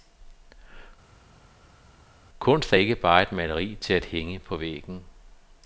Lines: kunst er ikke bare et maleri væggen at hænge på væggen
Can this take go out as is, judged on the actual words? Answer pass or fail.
fail